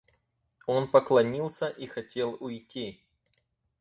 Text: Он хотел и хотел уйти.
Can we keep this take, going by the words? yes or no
no